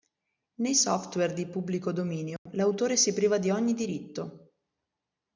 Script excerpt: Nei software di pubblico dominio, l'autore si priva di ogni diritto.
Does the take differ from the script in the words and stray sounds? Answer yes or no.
yes